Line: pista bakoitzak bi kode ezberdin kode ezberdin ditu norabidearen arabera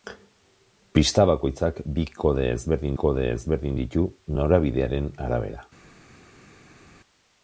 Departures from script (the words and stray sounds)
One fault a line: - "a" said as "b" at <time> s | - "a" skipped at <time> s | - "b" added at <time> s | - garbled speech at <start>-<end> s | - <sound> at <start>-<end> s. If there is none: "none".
none